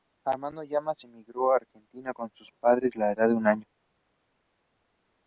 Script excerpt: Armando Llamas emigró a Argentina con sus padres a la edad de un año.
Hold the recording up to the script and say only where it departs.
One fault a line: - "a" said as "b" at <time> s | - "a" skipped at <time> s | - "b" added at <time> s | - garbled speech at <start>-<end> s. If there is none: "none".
none